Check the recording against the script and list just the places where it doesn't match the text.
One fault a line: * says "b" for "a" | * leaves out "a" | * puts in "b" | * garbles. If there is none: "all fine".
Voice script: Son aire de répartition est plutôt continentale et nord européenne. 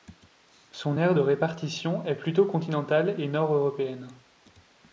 all fine